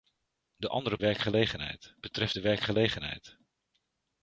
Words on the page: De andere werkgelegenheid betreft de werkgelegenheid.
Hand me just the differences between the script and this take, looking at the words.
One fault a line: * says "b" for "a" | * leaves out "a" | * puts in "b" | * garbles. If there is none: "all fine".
all fine